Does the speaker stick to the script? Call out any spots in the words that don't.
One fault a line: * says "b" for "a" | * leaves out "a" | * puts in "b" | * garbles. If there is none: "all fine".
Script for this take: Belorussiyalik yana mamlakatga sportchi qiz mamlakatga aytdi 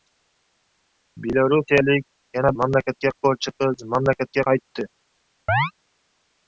all fine